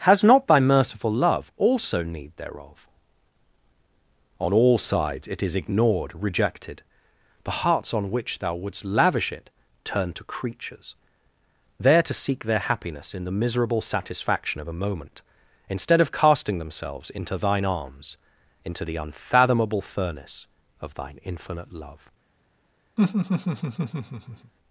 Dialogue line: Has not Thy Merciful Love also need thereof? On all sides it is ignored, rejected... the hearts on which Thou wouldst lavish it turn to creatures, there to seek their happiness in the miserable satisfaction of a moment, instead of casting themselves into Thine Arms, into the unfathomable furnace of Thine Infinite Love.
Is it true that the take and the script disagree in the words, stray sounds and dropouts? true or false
true